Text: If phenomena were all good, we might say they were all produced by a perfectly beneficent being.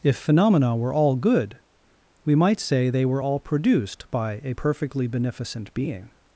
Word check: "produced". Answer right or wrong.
right